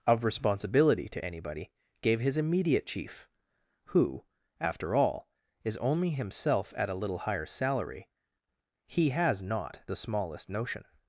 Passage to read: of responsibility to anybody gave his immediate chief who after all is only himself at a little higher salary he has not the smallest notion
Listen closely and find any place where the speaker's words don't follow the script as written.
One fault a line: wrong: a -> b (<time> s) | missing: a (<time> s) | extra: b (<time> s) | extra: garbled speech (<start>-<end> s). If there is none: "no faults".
no faults